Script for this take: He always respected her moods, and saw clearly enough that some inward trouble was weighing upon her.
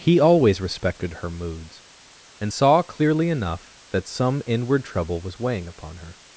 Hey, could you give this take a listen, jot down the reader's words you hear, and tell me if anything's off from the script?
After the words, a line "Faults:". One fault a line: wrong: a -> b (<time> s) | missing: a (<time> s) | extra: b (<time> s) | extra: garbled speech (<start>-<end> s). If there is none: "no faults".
He always respected her moods, and saw clearly enough that some inward trouble was weighing upon her.
Faults:
no faults